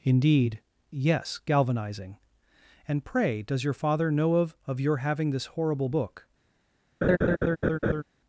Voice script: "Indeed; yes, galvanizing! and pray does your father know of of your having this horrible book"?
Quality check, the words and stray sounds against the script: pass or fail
fail